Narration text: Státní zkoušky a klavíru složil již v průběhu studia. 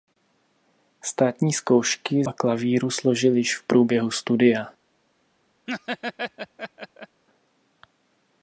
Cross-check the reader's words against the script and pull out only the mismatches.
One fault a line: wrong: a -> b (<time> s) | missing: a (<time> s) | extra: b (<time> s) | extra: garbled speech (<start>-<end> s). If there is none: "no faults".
no faults